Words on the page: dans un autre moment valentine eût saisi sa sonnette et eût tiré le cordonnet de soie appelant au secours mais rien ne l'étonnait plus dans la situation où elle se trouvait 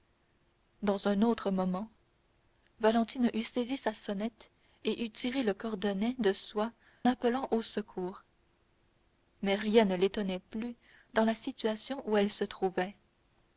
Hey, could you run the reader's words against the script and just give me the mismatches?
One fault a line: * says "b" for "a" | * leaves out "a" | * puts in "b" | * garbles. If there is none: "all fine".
all fine